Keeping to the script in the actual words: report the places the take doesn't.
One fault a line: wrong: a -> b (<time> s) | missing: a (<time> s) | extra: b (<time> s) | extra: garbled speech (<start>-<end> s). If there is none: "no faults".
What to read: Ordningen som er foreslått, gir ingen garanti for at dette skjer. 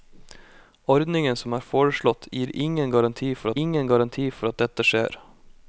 extra: ingen garanti for (3.6 s)